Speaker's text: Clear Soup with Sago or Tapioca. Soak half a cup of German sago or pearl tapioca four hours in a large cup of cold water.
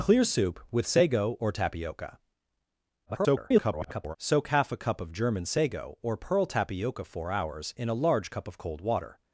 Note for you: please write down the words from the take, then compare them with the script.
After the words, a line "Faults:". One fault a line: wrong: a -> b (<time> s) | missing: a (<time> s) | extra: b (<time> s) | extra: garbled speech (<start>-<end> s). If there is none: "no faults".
Clear Soup with Sago or Tapioca. [garbled] Soak half a cup of German sago or pearl tapioca four hours in a large cup of cold water.
Faults:
extra: garbled speech (3.1-4.2 s)